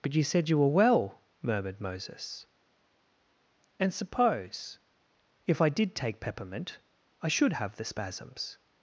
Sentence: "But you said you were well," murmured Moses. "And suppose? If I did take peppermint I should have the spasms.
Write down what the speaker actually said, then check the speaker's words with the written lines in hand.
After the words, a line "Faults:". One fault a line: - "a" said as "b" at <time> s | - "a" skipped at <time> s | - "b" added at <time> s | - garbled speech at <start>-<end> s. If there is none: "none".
"But you said you were well," murmured Moses. "And suppose? If I did take peppermint I should have the spasms.
Faults:
none